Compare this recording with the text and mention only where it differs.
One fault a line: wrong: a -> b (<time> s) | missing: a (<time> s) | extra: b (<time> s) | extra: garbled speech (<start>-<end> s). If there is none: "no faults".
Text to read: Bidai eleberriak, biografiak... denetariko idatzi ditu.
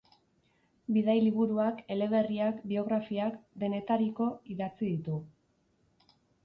extra: liburuak (1.2 s)